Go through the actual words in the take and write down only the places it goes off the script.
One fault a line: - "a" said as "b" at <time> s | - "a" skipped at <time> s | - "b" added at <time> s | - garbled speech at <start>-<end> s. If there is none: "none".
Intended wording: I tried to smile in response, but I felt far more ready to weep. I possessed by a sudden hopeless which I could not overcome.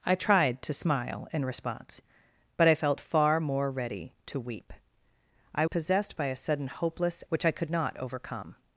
none